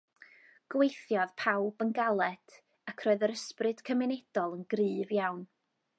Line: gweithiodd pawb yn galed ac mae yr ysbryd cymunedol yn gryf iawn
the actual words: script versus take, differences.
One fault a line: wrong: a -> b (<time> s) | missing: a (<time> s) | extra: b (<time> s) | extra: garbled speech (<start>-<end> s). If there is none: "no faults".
wrong: mae -> roedd (3.1 s)